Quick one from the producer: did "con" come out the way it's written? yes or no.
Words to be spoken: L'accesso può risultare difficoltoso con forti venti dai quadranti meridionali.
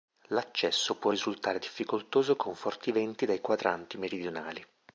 yes